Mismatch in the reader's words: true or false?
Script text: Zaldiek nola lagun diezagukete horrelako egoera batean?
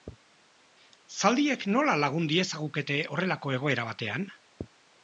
false